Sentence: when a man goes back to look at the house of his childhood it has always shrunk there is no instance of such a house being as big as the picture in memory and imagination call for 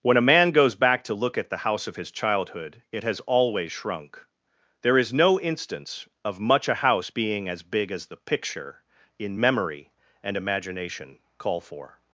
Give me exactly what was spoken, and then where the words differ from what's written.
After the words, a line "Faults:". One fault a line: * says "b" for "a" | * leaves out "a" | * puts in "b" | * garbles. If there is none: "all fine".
when a man goes back to look at the house of his childhood it has always shrunk there is no instance of much a house being as big as the picture in memory and imagination call for
Faults:
* says "much" for "such"